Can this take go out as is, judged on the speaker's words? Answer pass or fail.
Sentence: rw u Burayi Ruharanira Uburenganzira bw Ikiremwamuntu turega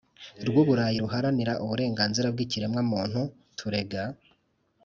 pass